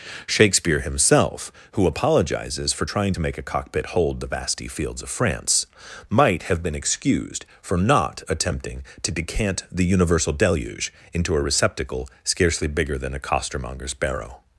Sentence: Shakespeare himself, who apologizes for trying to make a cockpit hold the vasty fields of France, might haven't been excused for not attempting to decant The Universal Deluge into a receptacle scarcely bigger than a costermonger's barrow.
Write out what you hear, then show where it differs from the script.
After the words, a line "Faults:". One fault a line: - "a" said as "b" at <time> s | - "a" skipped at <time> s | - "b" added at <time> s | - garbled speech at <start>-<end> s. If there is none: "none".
Shakespeare himself, who apologizes for trying to make a cockpit hold the vasty fields of France, might have been excused for not attempting to decant The Universal Deluge into a receptacle scarcely bigger than a costermonger's barrow.
Faults:
- "haven't" said as "have" at 6.4 s